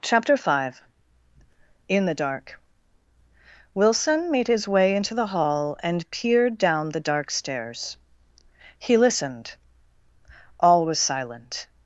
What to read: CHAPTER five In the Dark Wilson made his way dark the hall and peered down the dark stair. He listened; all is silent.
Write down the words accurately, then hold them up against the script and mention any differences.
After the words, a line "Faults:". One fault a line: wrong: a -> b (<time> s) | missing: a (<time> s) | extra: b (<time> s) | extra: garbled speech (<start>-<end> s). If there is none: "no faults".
CHAPTER five In the Dark Wilson made his way into the hall and peered down the dark stairs. He listened; all was silent.
Faults:
wrong: dark -> into (5.0 s)
wrong: stair -> stairs (7.3 s)
wrong: is -> was (10.8 s)